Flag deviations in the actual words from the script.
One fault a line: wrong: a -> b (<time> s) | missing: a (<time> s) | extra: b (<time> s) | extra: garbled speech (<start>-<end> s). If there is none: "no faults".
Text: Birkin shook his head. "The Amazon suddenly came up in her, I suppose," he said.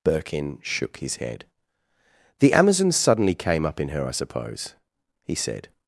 no faults